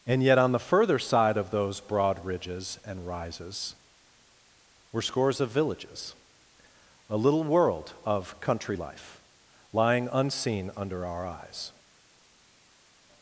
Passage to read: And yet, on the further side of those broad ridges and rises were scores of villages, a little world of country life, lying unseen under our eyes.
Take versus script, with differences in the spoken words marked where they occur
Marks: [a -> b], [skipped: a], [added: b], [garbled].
And yet, on the further side of those broad ridges and rises were scores of villages, a little world of country life, lying unseen under our eyes.